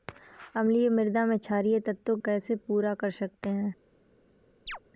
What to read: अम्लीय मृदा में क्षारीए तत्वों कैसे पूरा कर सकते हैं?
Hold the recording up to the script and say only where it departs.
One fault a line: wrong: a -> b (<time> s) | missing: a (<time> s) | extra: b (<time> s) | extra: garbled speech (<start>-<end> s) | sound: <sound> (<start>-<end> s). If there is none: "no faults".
sound: chirp (4.7-4.8 s)